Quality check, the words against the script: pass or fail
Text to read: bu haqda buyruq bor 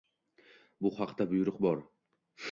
pass